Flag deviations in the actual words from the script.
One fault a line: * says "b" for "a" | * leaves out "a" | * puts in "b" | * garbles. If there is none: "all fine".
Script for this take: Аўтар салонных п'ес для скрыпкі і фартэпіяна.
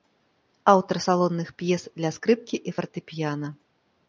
all fine